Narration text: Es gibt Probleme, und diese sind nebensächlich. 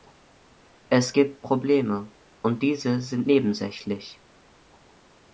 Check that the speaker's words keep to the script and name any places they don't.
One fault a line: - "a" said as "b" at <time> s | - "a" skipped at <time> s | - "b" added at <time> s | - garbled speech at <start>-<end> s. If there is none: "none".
none